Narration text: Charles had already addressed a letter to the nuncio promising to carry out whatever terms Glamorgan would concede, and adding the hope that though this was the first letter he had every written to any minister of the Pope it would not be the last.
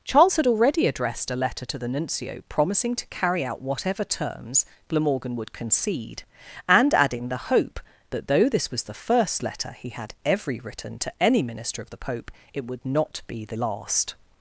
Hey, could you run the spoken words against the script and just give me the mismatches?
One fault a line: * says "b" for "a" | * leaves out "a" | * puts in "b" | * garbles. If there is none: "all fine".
all fine